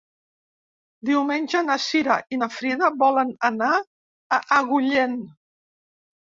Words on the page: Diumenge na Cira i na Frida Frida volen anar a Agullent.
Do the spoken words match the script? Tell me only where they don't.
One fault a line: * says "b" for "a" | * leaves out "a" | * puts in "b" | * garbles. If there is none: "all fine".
* leaves out "Frida"